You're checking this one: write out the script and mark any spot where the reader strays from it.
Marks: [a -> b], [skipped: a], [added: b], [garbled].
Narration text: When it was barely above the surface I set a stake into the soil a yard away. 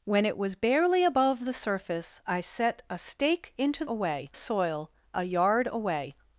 When it was barely above the surface I set a stake into [the -> away] soil a yard away.